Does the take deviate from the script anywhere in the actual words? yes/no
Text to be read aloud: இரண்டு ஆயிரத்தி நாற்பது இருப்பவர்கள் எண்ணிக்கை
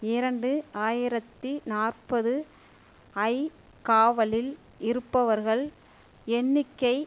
yes